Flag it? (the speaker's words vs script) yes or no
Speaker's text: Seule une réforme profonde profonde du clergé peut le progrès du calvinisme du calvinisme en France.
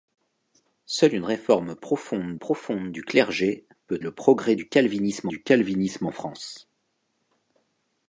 no